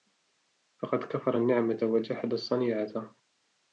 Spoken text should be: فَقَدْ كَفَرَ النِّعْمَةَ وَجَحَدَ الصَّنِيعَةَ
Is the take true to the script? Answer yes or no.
yes